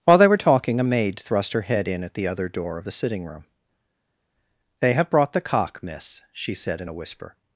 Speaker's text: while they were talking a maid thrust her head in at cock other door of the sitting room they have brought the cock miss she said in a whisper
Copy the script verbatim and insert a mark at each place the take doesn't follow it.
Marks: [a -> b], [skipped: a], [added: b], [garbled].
while they were talking a maid thrust her head in at [cock -> the] other door of the sitting room they have brought the cock miss she said in a whisper